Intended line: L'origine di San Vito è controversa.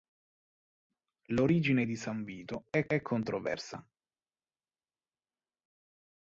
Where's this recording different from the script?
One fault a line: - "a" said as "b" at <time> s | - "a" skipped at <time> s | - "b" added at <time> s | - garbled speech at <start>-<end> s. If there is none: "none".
- "è" added at 2.9 s